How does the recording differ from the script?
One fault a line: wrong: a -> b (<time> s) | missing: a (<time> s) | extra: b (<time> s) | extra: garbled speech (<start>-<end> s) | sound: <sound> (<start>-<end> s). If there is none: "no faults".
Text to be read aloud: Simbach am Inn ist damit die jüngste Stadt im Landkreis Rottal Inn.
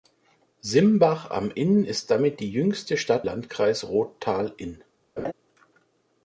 missing: im (3.3 s)
sound: laugh (5.2-5.3 s)